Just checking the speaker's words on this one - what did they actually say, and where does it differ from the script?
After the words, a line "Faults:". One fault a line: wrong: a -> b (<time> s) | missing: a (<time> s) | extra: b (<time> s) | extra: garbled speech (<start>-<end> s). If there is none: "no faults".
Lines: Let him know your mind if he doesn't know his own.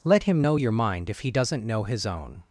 Let him know your mind if he doesn't know his own.
Faults:
no faults